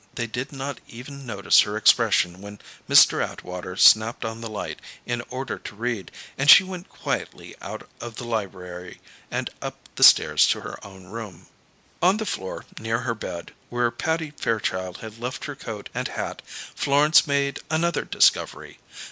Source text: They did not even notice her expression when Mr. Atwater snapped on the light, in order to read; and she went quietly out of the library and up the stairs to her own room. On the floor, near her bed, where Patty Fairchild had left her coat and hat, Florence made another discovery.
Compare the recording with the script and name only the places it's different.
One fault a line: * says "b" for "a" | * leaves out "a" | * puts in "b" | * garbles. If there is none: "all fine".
all fine